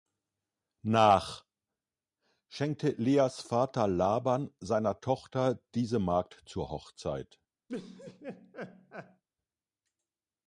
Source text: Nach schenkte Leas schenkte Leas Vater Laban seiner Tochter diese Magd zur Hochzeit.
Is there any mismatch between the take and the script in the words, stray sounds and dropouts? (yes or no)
yes